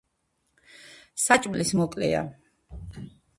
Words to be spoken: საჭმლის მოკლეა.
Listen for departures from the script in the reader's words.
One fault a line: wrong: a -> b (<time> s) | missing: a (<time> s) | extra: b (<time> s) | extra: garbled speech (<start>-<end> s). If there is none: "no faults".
no faults